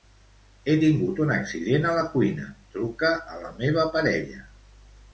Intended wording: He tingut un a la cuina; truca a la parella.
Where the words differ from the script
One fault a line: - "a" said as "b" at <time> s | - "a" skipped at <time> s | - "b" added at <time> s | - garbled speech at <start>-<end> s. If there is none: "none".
- "accident" added at 1.4 s
- "meva" added at 3.6 s